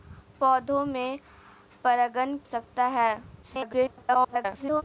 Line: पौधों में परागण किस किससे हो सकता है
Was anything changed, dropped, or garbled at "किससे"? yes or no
yes